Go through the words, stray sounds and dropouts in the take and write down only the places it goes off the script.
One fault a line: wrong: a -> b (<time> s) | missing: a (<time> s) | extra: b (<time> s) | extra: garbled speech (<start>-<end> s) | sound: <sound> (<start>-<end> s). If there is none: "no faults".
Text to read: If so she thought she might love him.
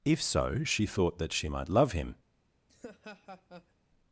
extra: that (1.2 s)
sound: laugh (2.7-3.7 s)